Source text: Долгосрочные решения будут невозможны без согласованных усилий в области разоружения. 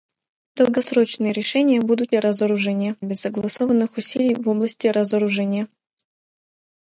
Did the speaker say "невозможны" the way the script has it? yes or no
no